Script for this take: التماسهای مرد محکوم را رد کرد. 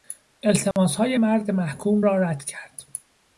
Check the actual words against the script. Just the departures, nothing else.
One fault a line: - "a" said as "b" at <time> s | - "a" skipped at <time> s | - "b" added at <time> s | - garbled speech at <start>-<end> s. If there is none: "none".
none